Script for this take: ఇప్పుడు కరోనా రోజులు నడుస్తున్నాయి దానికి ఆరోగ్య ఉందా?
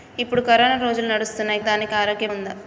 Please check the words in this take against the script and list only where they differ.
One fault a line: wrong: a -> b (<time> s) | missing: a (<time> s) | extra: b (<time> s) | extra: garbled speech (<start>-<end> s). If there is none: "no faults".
no faults